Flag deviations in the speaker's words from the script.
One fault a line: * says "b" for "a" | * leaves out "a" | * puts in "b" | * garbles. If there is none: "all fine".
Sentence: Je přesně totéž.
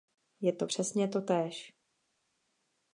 * puts in "to"